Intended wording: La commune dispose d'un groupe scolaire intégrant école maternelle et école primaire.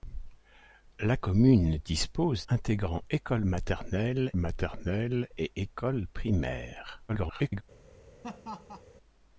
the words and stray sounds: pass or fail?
fail